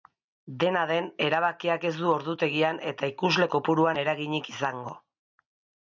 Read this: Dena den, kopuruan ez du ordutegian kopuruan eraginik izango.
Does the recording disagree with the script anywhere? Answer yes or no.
yes